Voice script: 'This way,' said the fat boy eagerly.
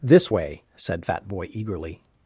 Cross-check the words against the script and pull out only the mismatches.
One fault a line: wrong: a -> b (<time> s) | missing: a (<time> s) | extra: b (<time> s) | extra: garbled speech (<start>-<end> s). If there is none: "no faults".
missing: the (1.0 s)